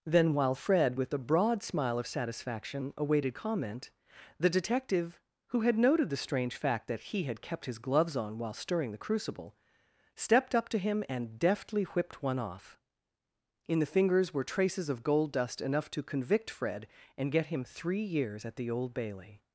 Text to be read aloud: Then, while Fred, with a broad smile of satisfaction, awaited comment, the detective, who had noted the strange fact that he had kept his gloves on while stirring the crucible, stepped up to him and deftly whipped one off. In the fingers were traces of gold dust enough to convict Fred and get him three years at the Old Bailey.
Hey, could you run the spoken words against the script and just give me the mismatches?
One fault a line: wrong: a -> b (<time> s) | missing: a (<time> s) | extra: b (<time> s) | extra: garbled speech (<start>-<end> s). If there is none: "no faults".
no faults